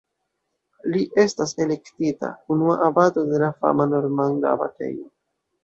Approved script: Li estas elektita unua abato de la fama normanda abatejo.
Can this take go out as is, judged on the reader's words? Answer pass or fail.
pass